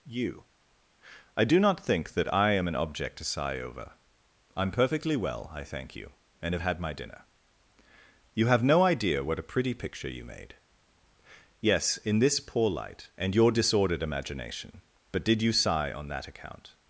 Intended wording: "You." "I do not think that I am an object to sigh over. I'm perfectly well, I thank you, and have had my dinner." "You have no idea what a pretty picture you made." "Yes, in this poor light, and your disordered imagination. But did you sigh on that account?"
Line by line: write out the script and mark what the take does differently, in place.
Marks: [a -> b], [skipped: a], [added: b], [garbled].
"You." "I do not think that I am an object to sigh over. I'm perfectly well, I thank you, and have had my dinner." "You have no idea what a pretty picture you made." "Yes, in this poor light, and your disordered imagination. But did you sigh on that account?"